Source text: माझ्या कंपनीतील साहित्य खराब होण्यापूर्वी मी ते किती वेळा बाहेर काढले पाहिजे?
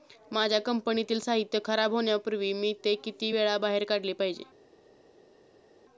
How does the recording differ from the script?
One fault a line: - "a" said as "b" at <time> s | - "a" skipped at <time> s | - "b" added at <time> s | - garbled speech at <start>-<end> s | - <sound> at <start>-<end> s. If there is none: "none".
none